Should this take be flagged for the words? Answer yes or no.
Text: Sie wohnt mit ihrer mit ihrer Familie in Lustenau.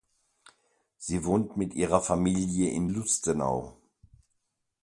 yes